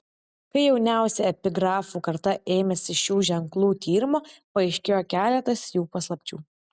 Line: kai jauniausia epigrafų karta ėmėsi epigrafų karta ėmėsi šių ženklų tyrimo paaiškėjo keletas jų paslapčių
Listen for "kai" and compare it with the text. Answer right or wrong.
right